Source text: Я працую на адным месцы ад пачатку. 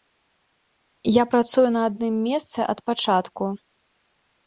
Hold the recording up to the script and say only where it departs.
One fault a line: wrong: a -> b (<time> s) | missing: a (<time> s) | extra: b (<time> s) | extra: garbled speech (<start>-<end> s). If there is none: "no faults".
no faults